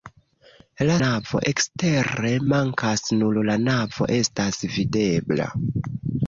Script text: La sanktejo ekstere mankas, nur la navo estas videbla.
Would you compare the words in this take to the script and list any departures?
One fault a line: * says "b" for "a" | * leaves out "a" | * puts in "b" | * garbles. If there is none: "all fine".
* says "navo" for "sanktejo"